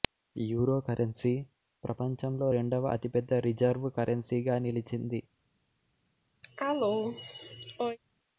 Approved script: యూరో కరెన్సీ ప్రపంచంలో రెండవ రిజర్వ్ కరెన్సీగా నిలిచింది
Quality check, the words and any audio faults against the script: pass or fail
fail